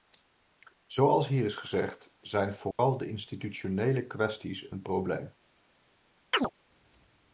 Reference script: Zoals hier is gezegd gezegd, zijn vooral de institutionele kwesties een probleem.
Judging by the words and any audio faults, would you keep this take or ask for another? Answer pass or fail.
fail